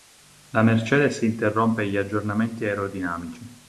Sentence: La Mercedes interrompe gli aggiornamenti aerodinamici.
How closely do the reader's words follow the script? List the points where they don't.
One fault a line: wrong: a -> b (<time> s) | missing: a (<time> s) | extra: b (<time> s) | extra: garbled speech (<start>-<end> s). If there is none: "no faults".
no faults